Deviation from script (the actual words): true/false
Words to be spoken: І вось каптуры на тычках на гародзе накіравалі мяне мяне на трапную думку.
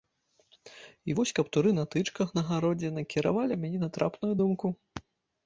true